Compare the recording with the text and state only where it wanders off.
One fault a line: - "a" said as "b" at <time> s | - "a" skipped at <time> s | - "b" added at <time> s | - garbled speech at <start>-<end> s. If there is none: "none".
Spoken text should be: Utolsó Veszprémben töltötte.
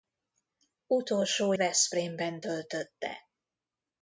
none